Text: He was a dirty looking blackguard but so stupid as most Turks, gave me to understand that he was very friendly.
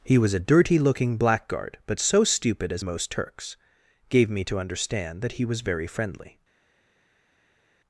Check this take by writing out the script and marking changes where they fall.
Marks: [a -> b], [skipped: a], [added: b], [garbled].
He was a dirty looking blackguard but so stupid as most Turks, gave me to understand that he was very friendly.